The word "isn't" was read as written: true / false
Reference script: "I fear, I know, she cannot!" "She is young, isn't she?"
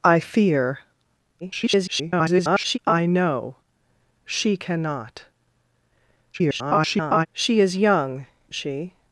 false